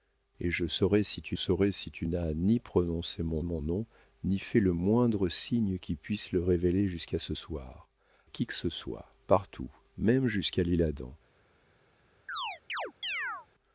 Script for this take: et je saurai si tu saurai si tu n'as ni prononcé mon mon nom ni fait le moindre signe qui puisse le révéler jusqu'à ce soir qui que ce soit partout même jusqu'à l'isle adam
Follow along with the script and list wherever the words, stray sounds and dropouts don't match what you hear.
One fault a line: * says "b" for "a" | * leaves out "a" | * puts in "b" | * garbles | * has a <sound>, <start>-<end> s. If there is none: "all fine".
* has a chirp, 12.3-13.5 s